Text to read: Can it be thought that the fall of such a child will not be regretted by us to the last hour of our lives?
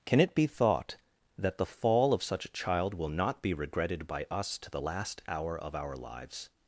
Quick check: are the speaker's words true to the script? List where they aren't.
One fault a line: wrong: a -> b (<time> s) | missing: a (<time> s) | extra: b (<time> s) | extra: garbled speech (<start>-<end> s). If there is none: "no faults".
no faults